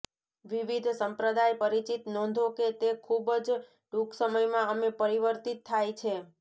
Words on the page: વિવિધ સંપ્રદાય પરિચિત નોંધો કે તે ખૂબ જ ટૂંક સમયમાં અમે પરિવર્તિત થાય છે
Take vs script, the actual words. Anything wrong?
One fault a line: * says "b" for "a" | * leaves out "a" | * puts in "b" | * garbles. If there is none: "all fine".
all fine